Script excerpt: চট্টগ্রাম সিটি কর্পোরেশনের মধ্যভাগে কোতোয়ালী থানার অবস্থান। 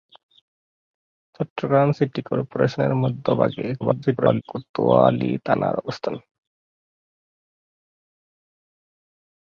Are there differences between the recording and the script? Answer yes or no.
yes